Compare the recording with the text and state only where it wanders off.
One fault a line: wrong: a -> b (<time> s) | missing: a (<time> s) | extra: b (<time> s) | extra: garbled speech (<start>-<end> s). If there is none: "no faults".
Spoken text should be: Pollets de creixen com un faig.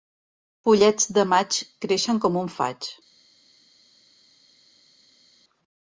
extra: maig (1.4 s)